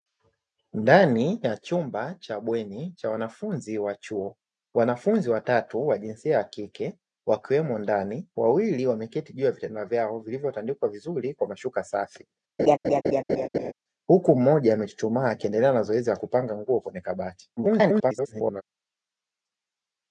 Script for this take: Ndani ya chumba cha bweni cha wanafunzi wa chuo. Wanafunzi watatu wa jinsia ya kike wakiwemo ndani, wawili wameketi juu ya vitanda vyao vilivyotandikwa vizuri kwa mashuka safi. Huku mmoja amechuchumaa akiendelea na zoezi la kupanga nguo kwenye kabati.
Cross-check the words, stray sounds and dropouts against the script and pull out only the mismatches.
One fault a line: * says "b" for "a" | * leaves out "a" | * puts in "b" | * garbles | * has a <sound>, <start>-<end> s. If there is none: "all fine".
* has a laugh, 12.6-13.7 s
* garbles